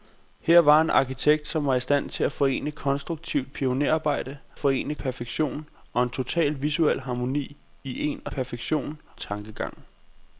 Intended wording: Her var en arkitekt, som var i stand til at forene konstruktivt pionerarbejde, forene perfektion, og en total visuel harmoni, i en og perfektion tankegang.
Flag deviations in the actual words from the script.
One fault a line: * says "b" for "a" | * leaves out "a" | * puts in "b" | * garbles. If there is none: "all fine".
all fine